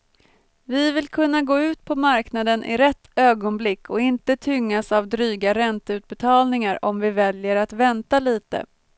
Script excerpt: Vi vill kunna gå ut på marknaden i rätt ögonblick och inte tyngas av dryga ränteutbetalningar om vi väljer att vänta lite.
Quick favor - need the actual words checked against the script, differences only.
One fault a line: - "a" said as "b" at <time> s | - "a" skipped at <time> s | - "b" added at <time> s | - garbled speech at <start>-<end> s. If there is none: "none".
none